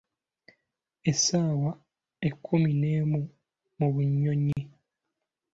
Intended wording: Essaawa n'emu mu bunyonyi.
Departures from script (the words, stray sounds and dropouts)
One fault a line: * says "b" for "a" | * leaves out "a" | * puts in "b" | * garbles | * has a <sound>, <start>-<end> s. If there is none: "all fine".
* puts in "ekkumi"
* has a dropout, 4.5-4.6 s